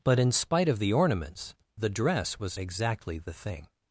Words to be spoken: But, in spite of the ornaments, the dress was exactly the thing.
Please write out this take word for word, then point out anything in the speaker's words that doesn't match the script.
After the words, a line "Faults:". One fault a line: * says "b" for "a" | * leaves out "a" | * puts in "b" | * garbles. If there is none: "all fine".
But, in spite of the ornaments, the dress was exactly the thing.
Faults:
all fine